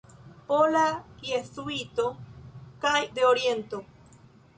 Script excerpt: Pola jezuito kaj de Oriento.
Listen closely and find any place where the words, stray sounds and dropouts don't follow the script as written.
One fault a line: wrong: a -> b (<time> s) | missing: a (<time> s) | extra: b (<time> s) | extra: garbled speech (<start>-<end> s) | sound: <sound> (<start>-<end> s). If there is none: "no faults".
no faults